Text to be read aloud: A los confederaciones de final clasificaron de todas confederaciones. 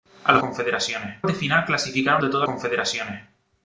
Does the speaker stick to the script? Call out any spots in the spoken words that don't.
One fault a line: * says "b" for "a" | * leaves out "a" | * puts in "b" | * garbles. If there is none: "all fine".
all fine